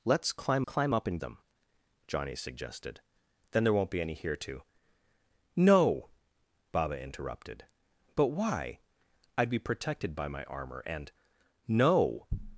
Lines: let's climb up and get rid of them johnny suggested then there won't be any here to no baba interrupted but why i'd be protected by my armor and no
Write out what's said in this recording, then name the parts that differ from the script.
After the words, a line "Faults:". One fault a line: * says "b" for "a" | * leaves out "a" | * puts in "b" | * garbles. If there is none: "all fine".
let's climb climb up and them johnny suggested then there won't be any here to no baba interrupted but why i'd be protected by my armor and no
Faults:
* puts in "climb"
* leaves out "get rid of"